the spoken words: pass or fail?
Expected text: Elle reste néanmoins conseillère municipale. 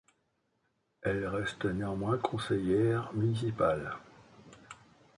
pass